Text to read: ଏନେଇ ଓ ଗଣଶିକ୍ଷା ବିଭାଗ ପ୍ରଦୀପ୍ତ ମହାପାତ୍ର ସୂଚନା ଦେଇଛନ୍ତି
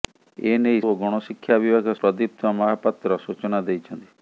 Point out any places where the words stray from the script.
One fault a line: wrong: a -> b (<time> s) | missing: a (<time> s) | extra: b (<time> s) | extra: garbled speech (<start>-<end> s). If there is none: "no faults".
no faults